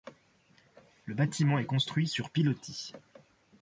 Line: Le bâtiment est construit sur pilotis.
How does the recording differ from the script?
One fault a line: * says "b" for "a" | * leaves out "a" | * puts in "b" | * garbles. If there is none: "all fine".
all fine